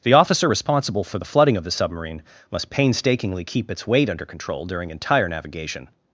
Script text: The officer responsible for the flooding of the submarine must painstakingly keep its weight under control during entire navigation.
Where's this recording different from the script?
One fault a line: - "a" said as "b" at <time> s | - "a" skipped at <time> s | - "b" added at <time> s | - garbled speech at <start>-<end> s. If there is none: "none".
none